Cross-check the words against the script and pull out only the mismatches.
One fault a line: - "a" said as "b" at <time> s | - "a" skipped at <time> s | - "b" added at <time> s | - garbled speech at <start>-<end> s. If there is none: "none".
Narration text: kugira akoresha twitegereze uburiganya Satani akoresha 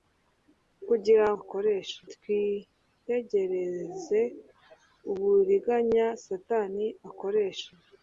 none